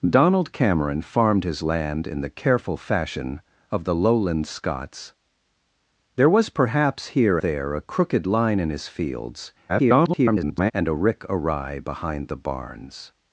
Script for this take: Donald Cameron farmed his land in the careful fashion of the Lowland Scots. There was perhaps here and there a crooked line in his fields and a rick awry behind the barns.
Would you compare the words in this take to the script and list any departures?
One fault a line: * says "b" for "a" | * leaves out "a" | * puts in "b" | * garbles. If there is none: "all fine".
* leaves out "and"
* garbles